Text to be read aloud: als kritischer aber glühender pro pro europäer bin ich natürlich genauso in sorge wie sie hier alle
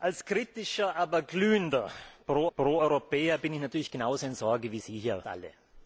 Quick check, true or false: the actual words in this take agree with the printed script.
true